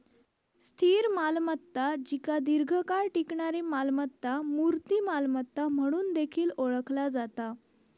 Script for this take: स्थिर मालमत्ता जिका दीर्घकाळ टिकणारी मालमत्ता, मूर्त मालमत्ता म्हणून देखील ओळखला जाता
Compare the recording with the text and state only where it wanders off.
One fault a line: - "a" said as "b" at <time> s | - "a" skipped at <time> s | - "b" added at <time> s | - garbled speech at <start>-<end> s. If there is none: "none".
none